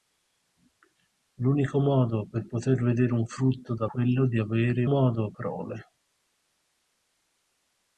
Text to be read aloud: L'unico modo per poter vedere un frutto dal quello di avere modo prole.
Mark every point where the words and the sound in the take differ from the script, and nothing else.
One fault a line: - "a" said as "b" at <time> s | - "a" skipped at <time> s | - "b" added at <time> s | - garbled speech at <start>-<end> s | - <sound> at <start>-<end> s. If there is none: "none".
none